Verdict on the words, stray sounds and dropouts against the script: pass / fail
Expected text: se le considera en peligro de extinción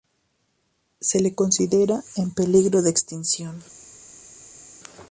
pass